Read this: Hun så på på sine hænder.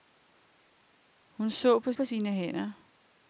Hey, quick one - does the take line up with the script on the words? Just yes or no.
yes